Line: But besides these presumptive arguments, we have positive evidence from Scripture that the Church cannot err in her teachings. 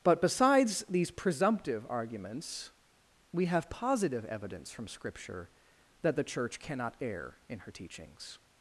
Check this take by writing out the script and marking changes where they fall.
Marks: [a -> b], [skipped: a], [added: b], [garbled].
But besides these presumptive arguments, we have positive evidence from Scripture that the Church cannot err in her teachings.